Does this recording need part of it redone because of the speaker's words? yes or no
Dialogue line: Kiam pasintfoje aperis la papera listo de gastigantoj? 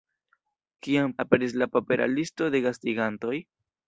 yes